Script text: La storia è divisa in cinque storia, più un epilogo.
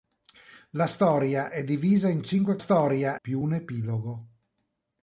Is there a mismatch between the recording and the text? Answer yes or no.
no